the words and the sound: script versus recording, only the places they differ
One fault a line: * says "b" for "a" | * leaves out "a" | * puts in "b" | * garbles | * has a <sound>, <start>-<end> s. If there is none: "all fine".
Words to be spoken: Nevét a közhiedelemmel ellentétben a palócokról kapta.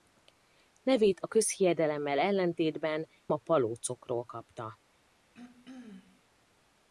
* has a throat clearing, 5.3-6.2 s